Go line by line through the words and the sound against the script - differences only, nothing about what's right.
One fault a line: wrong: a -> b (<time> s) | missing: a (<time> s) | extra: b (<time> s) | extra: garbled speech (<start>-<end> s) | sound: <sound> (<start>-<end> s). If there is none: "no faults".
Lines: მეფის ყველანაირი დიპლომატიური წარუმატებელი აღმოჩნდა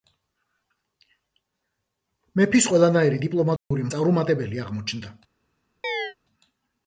sound: dropout (3.6-3.7 s)
sound: chirp (5.8-6.1 s)